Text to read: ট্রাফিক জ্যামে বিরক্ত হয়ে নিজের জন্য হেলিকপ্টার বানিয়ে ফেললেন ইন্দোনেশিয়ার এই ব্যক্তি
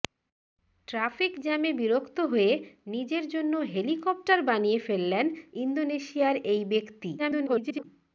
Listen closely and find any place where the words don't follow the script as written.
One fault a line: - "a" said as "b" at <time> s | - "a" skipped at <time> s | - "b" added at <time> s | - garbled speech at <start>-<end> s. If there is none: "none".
- garbled speech at 7.2-7.8 s